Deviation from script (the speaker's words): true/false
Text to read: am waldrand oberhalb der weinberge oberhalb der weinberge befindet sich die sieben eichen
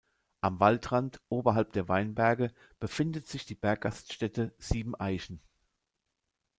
true